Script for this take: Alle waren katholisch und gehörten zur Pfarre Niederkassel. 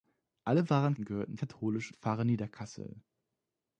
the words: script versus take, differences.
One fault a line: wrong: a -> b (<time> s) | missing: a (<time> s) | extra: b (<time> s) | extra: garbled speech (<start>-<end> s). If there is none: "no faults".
missing: katholisch (0.9 s)
wrong: zur -> katholisch (1.4 s)